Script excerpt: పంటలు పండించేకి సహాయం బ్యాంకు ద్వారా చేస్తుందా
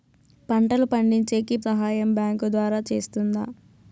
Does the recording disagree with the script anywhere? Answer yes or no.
no